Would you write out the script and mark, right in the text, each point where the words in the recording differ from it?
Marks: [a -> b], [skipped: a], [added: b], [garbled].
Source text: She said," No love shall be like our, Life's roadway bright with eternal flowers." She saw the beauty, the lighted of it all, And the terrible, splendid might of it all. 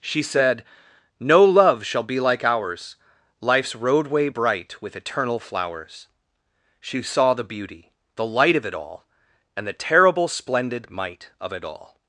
She said," No love shall be like [our, -> ours] Life's roadway bright with eternal flowers." She saw the beauty, the [lighted -> light] of it all, And the terrible, splendid might of it all.